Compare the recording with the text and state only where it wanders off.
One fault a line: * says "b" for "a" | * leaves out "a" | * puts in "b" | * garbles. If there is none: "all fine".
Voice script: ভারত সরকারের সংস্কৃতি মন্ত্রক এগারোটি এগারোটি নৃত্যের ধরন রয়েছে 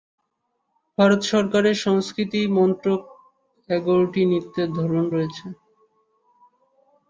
* leaves out "এগারোটি"